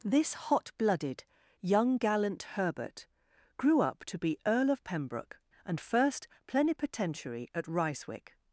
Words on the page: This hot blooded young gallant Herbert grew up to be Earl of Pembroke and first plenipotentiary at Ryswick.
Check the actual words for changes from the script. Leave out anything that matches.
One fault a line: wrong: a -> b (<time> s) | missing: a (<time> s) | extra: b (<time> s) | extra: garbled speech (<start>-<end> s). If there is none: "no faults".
no faults